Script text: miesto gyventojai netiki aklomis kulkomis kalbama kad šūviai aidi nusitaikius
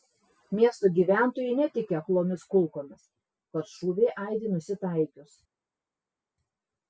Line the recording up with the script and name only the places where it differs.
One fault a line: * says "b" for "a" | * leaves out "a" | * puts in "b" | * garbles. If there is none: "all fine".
* leaves out "kalbama"